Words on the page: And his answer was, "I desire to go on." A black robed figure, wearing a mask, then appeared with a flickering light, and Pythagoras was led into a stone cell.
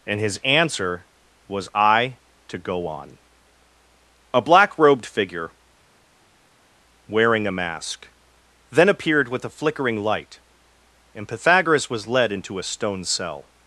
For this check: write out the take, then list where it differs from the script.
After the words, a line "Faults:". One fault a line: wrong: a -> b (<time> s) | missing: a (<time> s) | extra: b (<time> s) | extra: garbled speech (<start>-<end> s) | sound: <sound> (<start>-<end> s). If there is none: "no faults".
And his answer was, "I to go on." A black robed figure, wearing a mask, then appeared with a flickering light, and Pythagoras was led into a stone cell.
Faults:
missing: desire (2.2 s)